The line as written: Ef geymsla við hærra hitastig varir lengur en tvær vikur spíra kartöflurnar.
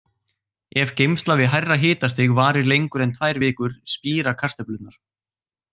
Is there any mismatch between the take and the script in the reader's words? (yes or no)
no